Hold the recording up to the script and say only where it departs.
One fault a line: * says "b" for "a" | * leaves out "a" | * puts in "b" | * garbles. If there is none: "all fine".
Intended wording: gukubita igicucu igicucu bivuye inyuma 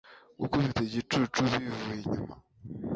* leaves out "igicucu"